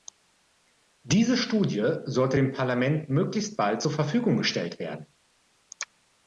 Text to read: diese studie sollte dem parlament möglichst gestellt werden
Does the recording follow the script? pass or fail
fail